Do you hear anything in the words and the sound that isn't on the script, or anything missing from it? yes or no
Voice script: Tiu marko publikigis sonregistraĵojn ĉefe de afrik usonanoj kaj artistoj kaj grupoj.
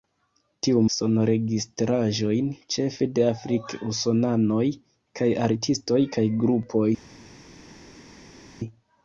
yes